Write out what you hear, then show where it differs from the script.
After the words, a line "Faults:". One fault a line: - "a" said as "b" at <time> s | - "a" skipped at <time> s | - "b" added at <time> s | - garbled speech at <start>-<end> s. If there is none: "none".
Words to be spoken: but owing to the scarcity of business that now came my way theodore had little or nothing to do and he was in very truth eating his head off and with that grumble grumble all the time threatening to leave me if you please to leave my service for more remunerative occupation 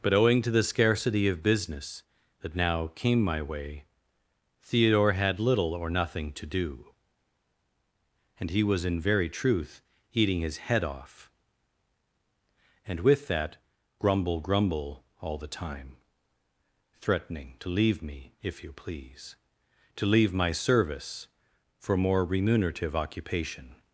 but owing to the scarcity of business that now came my way theodore had little or nothing to do and he was in very truth eating his head off and with that grumble grumble all the time threatening to leave me if you please to leave my service for more remunerative occupation
Faults:
none